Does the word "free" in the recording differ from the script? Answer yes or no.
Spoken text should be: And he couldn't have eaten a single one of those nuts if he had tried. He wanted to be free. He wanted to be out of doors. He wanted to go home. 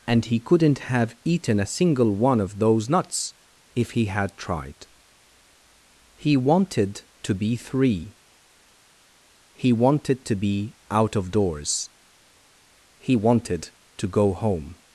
yes